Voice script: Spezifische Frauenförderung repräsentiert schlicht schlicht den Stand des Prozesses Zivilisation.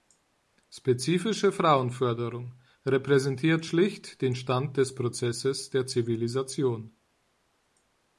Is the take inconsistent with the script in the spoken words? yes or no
yes